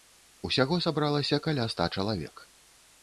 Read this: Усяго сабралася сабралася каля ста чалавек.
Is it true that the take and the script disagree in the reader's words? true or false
true